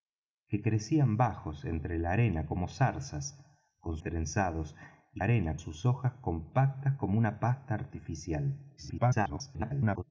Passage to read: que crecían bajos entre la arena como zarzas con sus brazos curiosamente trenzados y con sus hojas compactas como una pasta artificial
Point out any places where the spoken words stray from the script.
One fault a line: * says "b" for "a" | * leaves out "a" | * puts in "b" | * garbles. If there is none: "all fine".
* leaves out "sus brazos curiosamente"
* says "arena" for "con"
* garbles